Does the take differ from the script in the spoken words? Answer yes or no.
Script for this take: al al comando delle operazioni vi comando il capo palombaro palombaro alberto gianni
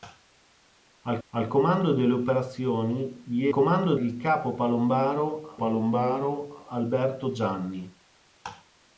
no